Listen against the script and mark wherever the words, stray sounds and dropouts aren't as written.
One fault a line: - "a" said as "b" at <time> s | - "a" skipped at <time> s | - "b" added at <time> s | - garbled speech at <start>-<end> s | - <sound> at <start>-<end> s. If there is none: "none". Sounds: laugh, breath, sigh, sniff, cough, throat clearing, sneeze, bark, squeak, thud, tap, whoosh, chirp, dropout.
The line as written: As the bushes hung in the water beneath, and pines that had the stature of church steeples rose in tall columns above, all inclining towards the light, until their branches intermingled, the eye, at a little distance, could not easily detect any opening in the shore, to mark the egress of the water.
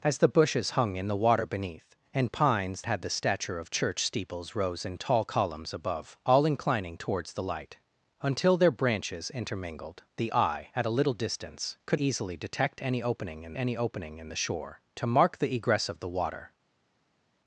- "that" skipped at 2.8 s
- "not" skipped at 12.0 s
- "any opening in" added at 13.5 s